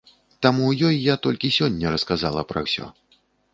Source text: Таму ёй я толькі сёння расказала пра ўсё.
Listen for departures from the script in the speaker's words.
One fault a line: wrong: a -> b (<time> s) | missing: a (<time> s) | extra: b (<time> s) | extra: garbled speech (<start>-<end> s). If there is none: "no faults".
no faults